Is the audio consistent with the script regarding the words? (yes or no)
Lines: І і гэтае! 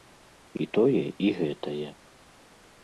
no